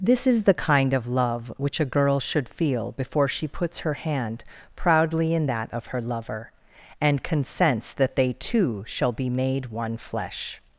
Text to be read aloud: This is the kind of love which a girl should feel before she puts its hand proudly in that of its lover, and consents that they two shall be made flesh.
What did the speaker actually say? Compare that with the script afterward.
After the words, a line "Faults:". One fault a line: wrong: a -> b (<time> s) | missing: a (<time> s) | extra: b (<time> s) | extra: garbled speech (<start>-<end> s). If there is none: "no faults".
This is the kind of love which a girl should feel before she puts her hand proudly in that of her lover, and consents that they two shall be made one flesh.
Faults:
wrong: its -> her (3.8 s)
wrong: its -> her (5.9 s)
extra: one (9.7 s)